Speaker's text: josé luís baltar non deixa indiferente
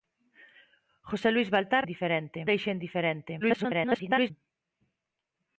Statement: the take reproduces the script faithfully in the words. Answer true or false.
false